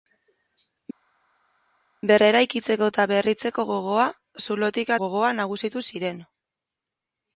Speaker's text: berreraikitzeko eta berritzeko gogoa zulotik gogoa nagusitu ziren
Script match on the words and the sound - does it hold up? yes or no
yes